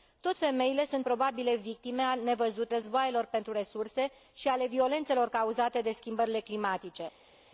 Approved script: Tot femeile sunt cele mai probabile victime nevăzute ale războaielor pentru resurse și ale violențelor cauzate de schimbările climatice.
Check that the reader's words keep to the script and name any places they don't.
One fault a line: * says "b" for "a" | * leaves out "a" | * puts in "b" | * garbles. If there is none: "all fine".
* leaves out "cele mai"
* leaves out "ale"